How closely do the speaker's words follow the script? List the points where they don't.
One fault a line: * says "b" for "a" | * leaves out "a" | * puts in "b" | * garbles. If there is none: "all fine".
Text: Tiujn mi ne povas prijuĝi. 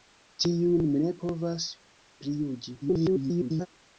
* garbles